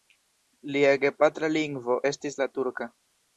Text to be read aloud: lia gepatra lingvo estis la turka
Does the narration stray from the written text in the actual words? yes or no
no